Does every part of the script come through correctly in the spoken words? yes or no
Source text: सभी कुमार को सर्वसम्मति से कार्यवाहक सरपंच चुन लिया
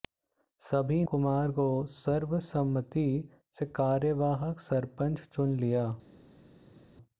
yes